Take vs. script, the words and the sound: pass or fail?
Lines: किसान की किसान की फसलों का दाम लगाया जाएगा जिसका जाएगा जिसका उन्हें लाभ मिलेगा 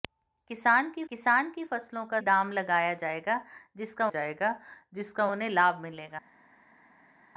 pass